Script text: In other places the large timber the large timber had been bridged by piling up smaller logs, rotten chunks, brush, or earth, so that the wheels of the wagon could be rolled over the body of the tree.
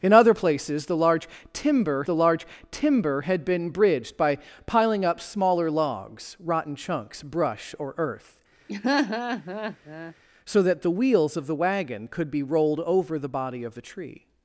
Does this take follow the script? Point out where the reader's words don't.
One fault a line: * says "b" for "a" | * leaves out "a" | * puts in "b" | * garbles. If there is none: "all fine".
all fine